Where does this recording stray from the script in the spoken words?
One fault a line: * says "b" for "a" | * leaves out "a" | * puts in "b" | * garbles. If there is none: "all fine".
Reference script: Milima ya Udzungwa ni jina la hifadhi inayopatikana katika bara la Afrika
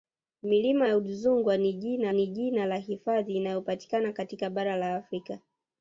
* puts in "ni jina"